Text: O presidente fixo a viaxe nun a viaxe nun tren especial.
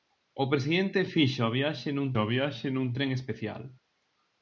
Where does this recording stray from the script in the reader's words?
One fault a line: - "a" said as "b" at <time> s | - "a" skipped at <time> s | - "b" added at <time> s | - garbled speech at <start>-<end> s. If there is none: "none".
none